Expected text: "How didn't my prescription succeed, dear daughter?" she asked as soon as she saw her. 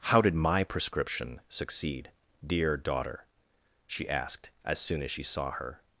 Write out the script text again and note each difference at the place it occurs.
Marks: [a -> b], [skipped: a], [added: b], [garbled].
"How [didn't -> did] my prescription succeed, dear daughter?" she asked as soon as she saw her.